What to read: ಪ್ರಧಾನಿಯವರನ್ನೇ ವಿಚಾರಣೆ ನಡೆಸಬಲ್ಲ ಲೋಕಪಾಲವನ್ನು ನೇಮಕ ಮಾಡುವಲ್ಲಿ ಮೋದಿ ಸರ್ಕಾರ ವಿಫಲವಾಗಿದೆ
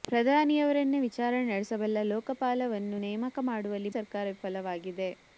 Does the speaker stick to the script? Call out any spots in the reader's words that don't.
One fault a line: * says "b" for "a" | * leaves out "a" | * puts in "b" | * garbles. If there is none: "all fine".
* leaves out "ಮೋದಿ"